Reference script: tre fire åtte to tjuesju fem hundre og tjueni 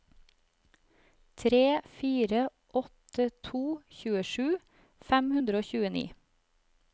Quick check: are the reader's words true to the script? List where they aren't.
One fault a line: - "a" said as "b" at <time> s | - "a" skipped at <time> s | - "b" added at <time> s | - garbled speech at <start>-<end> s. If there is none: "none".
none